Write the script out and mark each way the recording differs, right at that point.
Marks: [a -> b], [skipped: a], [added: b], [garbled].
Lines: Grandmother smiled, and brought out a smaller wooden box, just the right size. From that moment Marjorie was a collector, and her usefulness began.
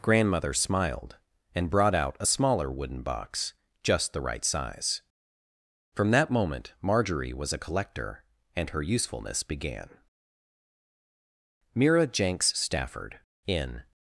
Grandmother smiled, and brought out a smaller wooden box, just the right size. From that moment Marjorie was a collector, and her usefulness began. [added: Mira Jenks Stafford in]